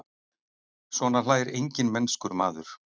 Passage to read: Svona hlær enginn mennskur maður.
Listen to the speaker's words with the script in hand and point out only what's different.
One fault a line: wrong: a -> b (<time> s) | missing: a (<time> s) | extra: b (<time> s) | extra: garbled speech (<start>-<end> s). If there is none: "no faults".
no faults